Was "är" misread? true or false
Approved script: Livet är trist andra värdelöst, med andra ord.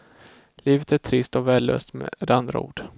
false